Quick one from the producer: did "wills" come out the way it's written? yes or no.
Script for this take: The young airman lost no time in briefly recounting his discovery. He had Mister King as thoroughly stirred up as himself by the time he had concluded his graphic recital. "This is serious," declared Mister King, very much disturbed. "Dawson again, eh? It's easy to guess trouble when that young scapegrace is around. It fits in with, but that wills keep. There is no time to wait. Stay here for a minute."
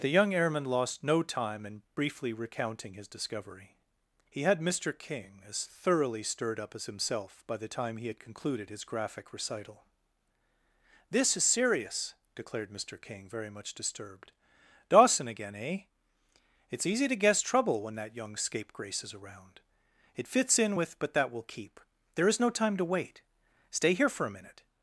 no